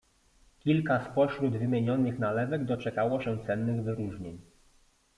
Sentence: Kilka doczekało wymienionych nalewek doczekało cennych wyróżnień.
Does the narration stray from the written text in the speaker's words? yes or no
yes